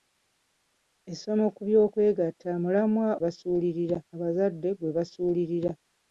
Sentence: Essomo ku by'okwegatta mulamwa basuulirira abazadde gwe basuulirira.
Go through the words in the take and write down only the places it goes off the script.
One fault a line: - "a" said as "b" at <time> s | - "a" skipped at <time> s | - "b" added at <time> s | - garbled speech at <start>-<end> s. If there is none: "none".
none